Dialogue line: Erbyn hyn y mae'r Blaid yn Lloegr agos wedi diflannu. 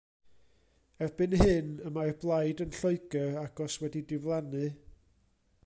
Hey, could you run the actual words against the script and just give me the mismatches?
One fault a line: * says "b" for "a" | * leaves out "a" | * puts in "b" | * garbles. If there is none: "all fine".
all fine